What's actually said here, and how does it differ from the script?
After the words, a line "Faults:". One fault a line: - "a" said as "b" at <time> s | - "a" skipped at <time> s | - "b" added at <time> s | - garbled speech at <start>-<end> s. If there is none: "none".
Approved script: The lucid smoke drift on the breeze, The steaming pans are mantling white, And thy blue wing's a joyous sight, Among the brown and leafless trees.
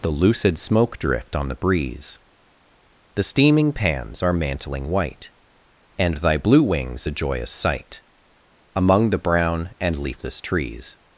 The lucid smoke drift on the breeze, The steaming pans are mantling white, And thy blue wing's a joyous sight, Among the brown and leafless trees.
Faults:
none